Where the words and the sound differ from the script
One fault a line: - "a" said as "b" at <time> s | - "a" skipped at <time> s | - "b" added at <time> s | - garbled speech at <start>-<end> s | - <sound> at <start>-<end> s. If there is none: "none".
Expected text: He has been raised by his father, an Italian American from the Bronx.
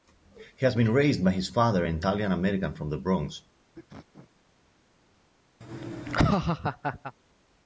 - sneeze at 3.7-4.3 s
- laugh at 5.6-7.1 s